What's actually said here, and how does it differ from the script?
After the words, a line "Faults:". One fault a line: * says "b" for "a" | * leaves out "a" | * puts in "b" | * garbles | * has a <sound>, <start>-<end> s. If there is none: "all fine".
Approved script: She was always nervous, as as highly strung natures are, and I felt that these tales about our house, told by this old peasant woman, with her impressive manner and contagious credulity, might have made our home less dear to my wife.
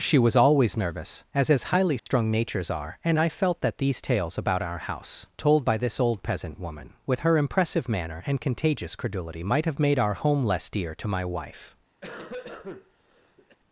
She was always nervous, as as highly strung natures are, and I felt that these tales about our house, told by this old peasant woman, with her impressive manner and contagious credulity, might have made our home less dear to my wife.
Faults:
* has a dropout, 2.0-2.1 s
* has a cough, 12.0-13.6 s